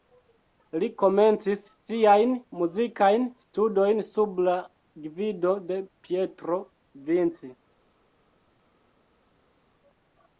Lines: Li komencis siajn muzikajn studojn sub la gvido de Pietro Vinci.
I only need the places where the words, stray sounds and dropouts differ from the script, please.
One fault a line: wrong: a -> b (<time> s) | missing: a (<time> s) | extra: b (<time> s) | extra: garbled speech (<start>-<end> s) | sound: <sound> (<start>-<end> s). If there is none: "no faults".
no faults